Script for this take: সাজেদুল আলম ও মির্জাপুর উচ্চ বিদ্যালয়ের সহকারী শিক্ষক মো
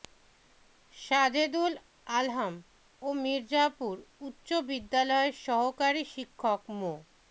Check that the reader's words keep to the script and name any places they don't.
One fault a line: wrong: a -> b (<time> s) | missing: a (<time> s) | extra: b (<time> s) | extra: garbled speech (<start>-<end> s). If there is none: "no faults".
no faults